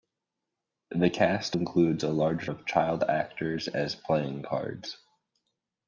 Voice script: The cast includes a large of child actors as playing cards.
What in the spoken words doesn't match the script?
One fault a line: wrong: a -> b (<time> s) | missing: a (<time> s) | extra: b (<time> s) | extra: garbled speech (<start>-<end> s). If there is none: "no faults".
no faults